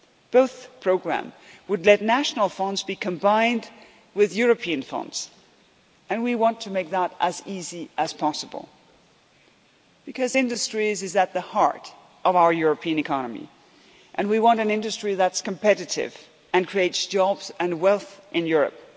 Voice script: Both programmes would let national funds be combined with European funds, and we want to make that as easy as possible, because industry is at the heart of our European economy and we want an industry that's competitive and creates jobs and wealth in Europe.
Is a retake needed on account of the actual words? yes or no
no